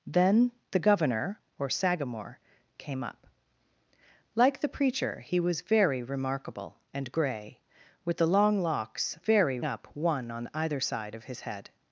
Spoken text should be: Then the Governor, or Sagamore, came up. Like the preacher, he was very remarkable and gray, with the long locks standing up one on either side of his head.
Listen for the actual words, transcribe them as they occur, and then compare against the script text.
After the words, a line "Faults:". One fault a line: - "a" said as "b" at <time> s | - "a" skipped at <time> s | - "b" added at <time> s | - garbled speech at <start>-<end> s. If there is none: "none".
Then the Governor, or Sagamore, came up. Like the preacher, he was very remarkable and gray, with the long locks very up one on either side of his head.
Faults:
- "standing" said as "very" at 9.2 s